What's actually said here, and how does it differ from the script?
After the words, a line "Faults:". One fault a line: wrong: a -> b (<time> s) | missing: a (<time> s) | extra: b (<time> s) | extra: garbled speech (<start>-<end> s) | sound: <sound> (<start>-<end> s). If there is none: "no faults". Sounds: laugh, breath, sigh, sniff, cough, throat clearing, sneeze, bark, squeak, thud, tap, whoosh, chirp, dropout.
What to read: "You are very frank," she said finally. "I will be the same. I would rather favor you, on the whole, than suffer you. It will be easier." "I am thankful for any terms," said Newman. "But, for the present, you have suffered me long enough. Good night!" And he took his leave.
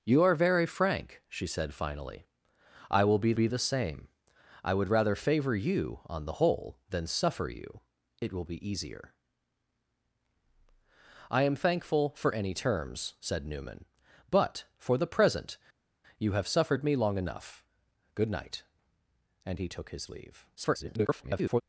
"You are very frank," she said finally. "I will be be the same. I would rather favor you, on the whole, than suffer you. It will be easier." "I am thankful for any terms," said Newman. "But, for the present, you have suffered me long enough. Good night!" And he took his leave. [garbled]
Faults:
extra: be (3.3 s)
extra: garbled speech (20.6-21.6 s)